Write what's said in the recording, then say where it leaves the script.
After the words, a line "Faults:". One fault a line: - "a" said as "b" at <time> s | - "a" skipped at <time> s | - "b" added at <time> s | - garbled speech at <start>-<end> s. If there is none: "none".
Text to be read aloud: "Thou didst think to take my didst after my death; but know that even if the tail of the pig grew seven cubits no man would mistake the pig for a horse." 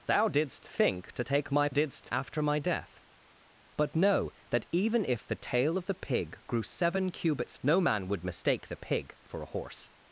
"Thou didst think to take my didst after my death; but know that even if the tail of the pig grew seven cubits no man would mistake the pig for a horse."
Faults:
none